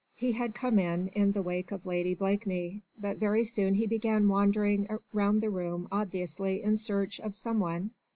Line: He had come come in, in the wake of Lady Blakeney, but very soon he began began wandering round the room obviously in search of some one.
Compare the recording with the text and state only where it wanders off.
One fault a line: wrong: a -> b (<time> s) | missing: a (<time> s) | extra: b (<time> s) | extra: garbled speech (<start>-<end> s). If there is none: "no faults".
missing: come (0.8 s)
missing: began (4.3 s)